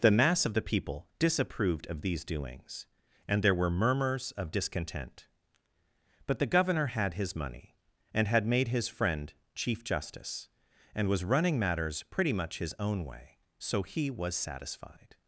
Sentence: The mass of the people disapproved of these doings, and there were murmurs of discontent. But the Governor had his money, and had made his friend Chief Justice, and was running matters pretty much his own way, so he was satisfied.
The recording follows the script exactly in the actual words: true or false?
true